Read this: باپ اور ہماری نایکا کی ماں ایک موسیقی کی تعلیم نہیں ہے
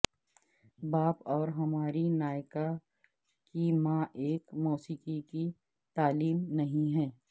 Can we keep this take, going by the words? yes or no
yes